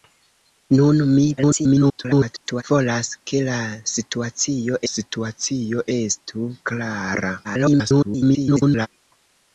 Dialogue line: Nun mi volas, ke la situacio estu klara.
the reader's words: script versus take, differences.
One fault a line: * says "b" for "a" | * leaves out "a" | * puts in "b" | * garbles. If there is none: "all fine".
* garbles
* puts in "situacio"
* garbles